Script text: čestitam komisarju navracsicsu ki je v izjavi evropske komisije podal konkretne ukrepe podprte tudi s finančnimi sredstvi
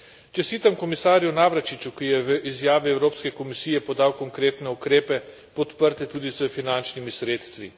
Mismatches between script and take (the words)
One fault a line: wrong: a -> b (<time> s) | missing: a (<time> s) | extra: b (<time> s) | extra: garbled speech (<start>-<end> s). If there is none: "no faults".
no faults